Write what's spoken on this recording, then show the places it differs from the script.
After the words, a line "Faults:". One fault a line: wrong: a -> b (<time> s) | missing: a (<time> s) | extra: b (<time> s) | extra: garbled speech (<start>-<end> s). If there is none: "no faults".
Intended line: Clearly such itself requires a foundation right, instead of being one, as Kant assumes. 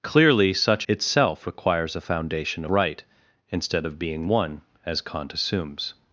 Clearly such itself requires a foundation right, instead of being one, as Kant assumes.
Faults:
no faults